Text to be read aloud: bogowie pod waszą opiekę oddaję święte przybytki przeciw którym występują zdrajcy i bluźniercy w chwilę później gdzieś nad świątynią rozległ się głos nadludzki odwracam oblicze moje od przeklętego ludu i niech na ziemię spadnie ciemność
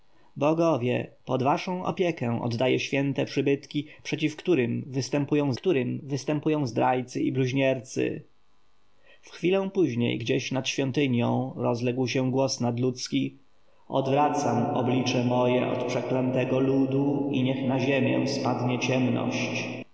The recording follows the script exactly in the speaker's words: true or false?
false